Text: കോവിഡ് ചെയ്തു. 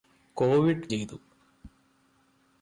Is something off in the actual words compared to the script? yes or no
no